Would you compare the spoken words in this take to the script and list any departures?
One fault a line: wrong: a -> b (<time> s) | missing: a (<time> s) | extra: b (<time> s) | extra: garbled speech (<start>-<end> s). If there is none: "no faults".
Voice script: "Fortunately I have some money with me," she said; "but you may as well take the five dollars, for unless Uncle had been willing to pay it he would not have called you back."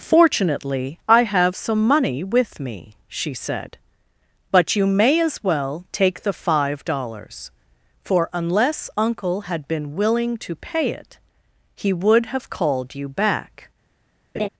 missing: not (12.3 s)